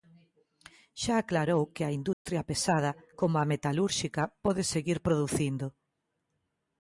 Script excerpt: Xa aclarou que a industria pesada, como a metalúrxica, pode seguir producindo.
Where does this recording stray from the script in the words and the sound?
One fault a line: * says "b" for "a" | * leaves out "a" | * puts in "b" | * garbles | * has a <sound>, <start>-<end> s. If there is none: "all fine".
* has a dropout, 2.1-2.3 s